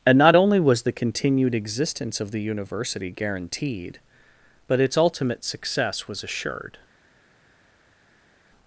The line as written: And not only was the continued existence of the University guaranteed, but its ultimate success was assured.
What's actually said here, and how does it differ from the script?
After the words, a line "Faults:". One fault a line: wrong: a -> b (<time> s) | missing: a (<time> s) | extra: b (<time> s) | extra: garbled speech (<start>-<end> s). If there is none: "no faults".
And not only was the continued existence of the University guaranteed, but its ultimate success was assured.
Faults:
no faults